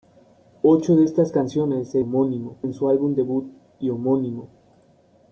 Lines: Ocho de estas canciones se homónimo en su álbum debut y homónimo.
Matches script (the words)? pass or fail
pass